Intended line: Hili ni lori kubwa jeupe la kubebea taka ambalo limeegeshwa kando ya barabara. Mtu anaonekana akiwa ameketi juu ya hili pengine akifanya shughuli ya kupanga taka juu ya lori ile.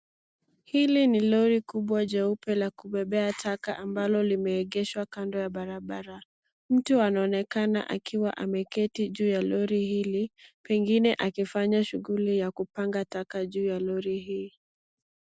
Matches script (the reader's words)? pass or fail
fail